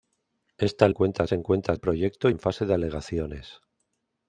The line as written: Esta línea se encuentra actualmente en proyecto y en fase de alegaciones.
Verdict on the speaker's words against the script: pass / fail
fail